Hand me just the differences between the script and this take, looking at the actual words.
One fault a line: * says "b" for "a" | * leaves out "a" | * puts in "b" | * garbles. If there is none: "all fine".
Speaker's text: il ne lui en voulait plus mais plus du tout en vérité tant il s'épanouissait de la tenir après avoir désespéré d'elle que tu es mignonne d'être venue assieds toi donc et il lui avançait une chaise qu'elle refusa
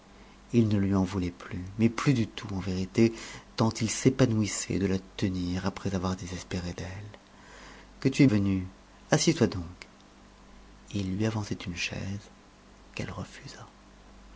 * leaves out "mignonne d'être"